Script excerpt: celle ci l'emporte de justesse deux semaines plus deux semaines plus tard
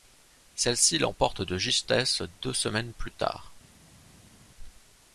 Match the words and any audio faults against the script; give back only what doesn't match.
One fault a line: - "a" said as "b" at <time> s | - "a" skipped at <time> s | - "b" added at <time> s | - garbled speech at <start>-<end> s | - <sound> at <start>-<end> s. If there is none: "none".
- "deux semaines plus" skipped at 3.1 s